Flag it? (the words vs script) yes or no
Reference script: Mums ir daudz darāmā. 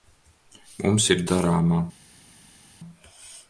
yes